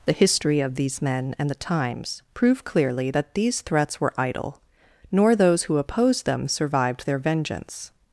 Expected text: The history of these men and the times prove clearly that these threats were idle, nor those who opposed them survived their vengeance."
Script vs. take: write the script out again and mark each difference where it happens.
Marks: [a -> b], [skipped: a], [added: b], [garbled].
The history of these men and the times prove clearly that these threats were idle, nor those who opposed them survived their vengeance."